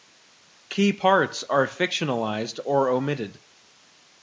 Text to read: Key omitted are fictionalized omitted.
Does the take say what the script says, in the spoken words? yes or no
no